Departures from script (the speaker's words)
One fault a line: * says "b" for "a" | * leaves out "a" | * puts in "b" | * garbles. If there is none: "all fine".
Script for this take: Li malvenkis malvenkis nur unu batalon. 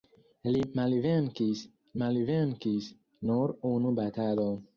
all fine